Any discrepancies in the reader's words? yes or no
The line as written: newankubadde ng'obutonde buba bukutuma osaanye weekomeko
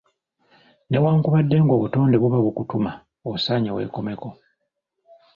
no